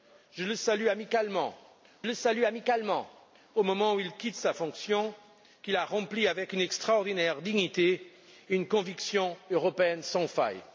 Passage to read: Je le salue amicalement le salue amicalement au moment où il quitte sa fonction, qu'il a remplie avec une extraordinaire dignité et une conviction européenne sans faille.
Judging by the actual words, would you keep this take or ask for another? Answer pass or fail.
pass